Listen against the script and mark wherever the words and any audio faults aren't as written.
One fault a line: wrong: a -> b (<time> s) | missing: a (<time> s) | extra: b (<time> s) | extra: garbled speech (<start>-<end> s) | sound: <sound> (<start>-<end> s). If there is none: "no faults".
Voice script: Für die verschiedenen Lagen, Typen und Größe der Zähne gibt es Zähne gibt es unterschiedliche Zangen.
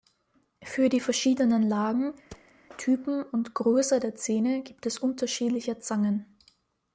sound: thud (2.3-2.5 s)
missing: Zähne gibt es (5.0 s)